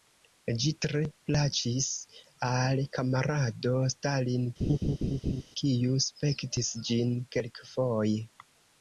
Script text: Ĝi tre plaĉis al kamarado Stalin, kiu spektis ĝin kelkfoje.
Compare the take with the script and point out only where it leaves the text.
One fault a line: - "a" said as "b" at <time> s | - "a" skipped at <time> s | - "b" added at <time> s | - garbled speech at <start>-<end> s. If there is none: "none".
none